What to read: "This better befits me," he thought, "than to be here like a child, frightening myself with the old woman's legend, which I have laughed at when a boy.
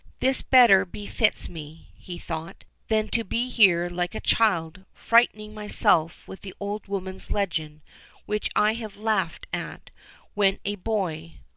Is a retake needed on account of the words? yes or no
no